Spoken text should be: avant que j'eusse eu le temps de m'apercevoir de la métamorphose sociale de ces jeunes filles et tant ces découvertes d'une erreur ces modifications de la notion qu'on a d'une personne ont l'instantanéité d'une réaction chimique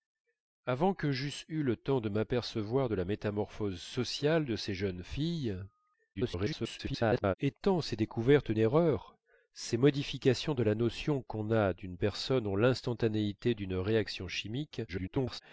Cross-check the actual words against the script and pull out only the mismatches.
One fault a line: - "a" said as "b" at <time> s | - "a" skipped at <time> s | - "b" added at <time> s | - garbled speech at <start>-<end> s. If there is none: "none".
- garbled speech at 6.1-7.3 s
- "d'une" skipped at 8.5 s
- garbled speech at 14.9-15.4 s